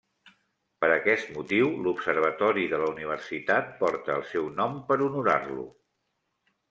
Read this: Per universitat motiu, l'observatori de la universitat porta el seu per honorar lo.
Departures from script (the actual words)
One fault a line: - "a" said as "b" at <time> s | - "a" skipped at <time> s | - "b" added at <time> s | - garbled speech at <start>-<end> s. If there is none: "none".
- "universitat" said as "aquest" at 0.9 s
- "nom" added at 4.6 s